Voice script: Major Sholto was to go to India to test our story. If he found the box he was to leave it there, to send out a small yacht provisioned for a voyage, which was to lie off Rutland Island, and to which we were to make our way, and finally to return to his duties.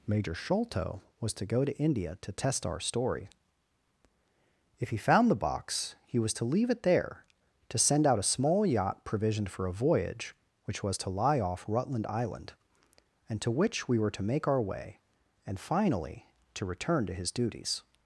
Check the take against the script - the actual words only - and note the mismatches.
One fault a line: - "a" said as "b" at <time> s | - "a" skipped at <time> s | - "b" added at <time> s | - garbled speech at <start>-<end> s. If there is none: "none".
none